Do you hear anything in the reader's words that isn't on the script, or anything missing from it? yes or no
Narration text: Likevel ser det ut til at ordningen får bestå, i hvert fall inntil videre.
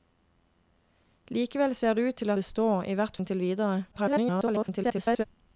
yes